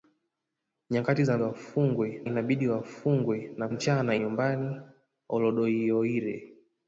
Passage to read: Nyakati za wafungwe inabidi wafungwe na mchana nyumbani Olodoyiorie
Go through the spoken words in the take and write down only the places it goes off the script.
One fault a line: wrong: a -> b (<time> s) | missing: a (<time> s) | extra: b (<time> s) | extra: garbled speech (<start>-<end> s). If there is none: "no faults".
no faults